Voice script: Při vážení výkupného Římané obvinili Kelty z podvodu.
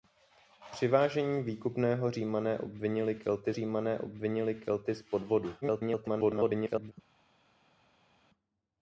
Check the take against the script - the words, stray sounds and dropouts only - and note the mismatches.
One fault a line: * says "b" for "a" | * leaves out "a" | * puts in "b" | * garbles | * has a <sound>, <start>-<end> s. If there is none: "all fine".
* puts in "Římané obvinili Kelty"
* garbles